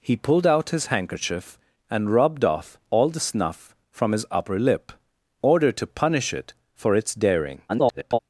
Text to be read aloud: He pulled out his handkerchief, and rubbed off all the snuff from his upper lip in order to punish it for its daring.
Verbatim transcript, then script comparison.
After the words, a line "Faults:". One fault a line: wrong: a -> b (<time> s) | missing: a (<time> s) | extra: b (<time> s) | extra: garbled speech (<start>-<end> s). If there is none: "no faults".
He pulled out his handkerchief, and rubbed off all the snuff from his upper lip order to punish it for its daring. [garbled]
Faults:
missing: in (4.9 s)
extra: garbled speech (7.7-8.2 s)